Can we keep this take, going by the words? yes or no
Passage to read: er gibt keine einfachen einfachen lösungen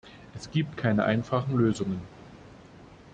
no